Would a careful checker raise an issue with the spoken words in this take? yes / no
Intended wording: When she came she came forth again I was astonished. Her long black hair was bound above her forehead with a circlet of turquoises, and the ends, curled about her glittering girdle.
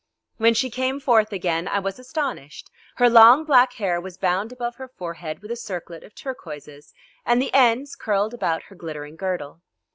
yes